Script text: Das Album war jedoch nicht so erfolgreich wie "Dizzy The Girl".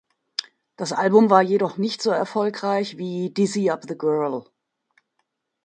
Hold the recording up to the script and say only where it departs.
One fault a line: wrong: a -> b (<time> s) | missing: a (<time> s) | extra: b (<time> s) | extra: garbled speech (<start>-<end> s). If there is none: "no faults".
extra: Up (3.7 s)